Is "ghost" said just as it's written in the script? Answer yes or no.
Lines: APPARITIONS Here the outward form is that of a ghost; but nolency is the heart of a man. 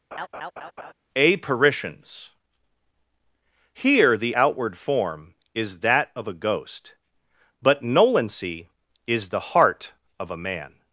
yes